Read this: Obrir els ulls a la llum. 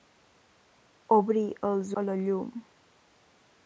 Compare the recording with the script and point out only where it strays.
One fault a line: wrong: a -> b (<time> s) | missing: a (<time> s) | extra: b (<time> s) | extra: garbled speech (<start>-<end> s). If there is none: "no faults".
missing: ulls (1.9 s)